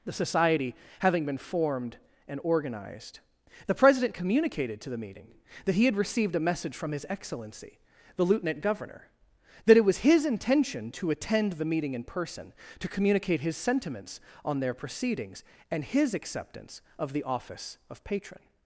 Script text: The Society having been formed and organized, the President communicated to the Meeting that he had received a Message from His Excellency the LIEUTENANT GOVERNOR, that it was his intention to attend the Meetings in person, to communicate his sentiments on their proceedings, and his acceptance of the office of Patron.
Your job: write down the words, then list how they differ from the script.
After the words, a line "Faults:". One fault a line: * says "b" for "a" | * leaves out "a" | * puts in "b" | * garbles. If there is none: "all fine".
The Society having been formed and organized, the President communicated to the Meeting that he had received a Message from His Excellency the LIEUTENANT GOVERNOR, that it was his intention to attend the Meeting in person, to communicate his sentiments on their proceedings, and his acceptance of the office of Patron.
Faults:
* says "Meeting" for "Meetings"